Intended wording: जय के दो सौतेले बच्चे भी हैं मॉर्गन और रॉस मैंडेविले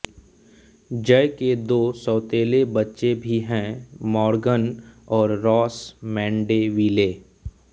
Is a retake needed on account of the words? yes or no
no